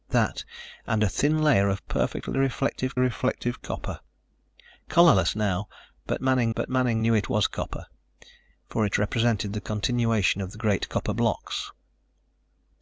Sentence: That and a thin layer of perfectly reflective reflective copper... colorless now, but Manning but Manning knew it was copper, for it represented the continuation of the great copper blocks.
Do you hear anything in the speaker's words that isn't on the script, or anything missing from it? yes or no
no